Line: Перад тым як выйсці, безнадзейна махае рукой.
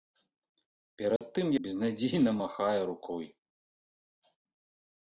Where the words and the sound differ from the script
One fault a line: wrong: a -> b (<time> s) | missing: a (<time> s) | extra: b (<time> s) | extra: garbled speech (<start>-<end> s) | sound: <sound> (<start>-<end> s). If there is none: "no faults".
sound: dropout (1.2-1.2 s)
missing: як выйсці (1.5 s)